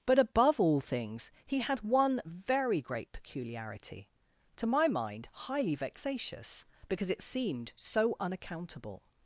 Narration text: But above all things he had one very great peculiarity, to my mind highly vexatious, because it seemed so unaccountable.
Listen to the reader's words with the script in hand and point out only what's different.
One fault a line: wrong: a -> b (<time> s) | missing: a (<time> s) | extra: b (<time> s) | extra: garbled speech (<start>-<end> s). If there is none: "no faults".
no faults